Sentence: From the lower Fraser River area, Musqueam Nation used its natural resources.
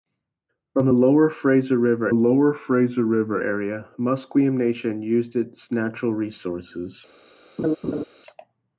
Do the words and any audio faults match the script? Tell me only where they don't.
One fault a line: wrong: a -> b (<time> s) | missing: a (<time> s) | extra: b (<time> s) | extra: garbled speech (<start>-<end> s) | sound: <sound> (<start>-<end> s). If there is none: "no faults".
extra: lower Fraser River (2.1 s)
sound: laugh (7.6-8.0 s)